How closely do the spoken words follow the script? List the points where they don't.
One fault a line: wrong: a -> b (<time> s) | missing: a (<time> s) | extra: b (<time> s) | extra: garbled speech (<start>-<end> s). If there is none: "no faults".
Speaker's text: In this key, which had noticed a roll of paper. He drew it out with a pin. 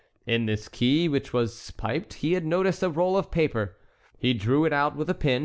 extra: was piped he (1.3 s)